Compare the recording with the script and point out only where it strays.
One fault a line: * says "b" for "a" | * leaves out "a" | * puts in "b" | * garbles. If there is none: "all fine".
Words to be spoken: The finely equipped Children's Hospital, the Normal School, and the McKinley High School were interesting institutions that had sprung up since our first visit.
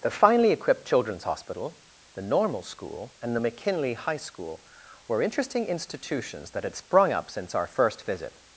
all fine